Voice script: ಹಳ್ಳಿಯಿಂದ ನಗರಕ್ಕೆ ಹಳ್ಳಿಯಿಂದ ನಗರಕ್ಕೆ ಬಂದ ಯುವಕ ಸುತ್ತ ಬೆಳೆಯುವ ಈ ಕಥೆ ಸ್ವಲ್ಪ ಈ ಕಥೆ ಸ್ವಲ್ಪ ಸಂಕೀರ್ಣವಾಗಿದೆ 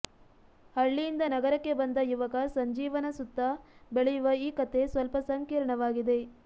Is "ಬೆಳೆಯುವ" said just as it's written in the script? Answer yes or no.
yes